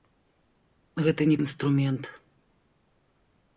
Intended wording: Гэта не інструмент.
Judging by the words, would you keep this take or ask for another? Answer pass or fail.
pass